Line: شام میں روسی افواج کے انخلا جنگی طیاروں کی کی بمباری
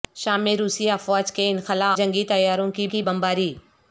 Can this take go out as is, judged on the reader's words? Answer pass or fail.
pass